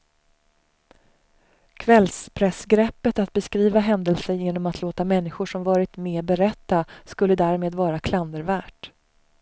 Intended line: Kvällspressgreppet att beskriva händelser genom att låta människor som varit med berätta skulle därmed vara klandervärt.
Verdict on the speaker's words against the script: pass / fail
pass